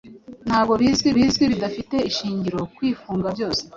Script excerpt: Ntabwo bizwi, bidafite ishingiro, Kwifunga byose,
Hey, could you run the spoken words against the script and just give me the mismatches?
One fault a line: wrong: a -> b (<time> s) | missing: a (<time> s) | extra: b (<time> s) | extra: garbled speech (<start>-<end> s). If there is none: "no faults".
extra: bizwi (1.2 s)